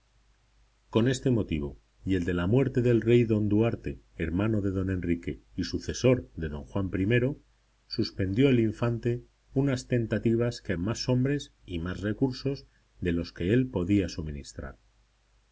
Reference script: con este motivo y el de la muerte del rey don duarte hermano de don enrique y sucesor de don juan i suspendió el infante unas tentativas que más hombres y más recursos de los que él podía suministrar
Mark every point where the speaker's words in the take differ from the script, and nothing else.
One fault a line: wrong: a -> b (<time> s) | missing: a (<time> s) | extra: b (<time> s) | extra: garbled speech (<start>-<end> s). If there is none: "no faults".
no faults